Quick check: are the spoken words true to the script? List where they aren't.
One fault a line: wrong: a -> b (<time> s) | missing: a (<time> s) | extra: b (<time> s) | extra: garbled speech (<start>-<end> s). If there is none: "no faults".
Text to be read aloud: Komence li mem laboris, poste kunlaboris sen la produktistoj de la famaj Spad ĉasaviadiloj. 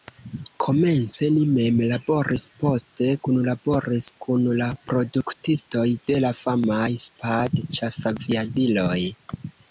wrong: sen -> kun (4.3 s)